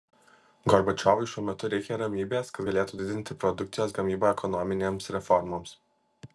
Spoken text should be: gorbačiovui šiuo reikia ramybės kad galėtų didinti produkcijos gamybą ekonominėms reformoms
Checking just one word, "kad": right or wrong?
right